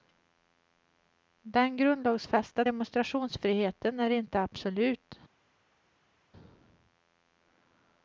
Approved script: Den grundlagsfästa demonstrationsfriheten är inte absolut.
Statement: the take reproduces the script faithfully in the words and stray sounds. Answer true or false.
true